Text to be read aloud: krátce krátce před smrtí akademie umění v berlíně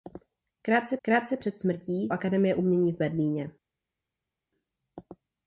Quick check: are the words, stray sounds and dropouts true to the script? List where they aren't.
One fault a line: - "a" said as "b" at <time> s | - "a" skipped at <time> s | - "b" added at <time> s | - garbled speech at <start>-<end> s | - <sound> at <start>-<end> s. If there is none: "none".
none